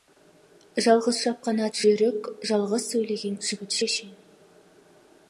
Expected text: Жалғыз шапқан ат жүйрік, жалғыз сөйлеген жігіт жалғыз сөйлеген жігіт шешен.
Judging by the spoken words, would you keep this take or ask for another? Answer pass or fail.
fail